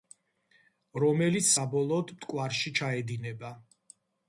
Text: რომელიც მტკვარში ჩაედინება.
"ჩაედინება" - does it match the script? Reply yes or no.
yes